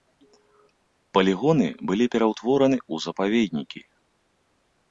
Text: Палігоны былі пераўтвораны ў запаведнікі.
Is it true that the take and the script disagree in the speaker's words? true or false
false